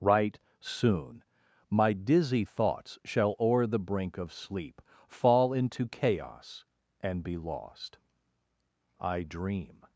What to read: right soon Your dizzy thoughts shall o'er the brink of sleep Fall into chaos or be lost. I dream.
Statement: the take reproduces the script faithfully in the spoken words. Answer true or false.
false